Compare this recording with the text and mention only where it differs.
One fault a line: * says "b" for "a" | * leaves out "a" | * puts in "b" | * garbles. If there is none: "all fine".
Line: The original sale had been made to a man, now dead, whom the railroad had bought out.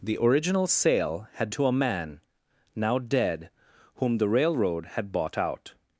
* leaves out "been made"